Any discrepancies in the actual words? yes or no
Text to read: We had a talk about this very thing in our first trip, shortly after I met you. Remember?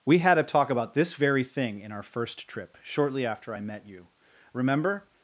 no